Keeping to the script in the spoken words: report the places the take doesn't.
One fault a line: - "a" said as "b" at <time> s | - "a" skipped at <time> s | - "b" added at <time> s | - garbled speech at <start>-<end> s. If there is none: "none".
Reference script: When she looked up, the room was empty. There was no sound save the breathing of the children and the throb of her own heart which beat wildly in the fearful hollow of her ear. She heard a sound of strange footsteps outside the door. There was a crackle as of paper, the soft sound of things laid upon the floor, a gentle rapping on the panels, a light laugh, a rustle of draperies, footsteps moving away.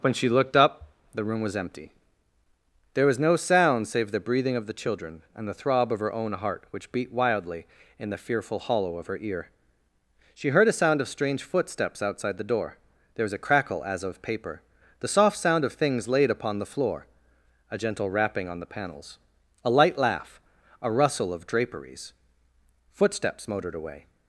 - "moving" said as "motored" at 23.5 s